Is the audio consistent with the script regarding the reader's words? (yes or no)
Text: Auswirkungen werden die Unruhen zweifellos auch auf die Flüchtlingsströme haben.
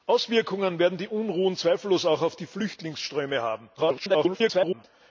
no